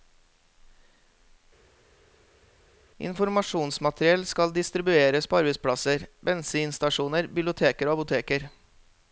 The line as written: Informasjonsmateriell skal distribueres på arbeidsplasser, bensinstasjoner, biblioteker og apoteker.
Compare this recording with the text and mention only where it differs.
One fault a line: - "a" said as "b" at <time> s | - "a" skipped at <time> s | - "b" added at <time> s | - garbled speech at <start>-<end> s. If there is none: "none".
none